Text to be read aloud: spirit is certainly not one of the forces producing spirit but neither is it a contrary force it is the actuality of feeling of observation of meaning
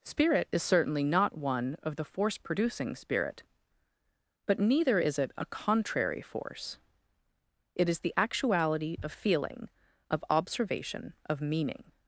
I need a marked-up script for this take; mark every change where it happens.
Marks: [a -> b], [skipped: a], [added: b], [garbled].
spirit is certainly not one of the [forces -> force] producing spirit but neither is it a contrary force it is the actuality of feeling of observation of meaning